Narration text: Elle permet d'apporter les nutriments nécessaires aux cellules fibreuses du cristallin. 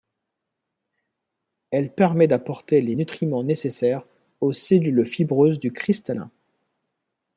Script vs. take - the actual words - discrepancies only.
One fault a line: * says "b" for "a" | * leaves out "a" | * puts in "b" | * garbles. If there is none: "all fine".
all fine